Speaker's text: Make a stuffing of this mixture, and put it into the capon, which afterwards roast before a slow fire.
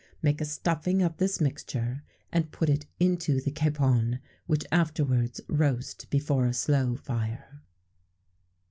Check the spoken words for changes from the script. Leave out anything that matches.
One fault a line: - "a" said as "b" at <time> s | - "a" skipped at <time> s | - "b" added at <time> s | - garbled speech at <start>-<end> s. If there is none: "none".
none